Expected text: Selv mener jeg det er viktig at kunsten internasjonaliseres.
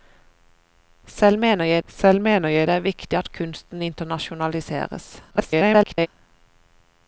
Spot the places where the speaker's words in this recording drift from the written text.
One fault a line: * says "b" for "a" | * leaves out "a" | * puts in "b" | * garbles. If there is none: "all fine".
* puts in "selv mener jeg"
* garbles